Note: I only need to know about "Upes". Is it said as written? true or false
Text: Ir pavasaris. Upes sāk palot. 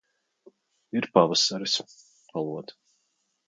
false